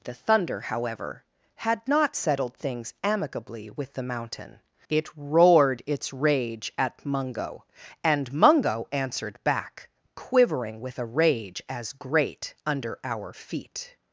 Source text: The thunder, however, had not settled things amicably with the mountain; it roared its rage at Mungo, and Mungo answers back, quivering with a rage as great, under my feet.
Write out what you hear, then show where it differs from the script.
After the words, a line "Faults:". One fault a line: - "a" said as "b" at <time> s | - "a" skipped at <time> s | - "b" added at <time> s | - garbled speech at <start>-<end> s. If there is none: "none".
The thunder, however, had not settled things amicably with the mountain; it roared its rage at Mungo, and Mungo answered back, quivering with a rage as great, under our feet.
Faults:
- "answers" said as "answered" at 8.9 s
- "my" said as "our" at 13.0 s